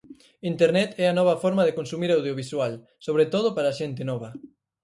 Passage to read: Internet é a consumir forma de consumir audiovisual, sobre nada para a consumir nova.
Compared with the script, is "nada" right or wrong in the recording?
wrong